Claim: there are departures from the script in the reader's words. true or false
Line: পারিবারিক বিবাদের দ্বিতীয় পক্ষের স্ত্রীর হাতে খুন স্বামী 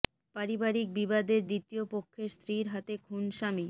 false